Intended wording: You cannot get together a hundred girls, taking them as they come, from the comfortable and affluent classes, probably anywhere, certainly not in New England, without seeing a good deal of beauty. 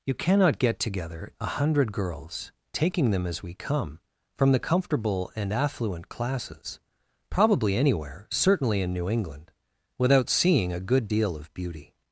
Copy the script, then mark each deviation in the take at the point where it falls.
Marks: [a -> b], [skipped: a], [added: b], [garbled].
You cannot get together a hundred girls, taking them as [they -> we] come, from the comfortable and affluent classes, probably anywhere, certainly [skipped: not] in New England, without seeing a good deal of beauty.